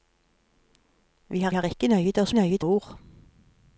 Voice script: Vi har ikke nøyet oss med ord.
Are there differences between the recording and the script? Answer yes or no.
yes